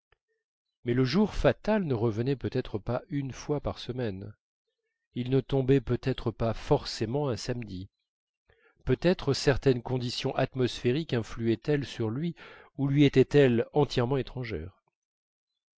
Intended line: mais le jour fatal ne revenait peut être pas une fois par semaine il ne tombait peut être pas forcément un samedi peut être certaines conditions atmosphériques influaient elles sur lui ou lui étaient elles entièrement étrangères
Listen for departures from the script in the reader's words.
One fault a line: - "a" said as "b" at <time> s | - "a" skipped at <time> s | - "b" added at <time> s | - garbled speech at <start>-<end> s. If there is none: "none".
none